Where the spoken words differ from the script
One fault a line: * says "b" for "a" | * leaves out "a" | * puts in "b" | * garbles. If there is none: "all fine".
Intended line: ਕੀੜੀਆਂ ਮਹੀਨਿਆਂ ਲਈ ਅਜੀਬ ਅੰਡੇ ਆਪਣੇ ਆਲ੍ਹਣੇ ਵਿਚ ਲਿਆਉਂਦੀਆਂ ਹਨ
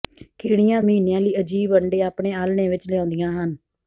all fine